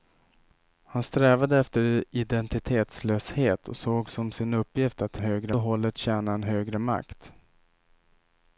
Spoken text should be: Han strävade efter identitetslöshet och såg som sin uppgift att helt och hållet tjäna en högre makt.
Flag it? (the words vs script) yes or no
yes